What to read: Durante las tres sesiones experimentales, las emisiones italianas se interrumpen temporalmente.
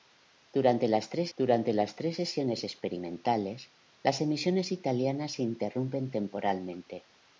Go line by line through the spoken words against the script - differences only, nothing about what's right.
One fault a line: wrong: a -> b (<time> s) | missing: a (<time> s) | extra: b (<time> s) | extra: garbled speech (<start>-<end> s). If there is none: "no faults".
extra: durante las tres (1.3 s)